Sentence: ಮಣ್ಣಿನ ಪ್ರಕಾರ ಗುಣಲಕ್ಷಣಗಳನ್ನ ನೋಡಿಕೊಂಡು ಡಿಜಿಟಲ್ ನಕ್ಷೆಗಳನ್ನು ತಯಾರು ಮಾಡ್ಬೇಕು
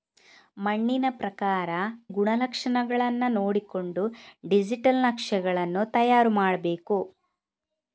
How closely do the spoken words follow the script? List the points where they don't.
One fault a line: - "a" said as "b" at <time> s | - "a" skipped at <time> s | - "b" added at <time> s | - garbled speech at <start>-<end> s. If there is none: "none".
none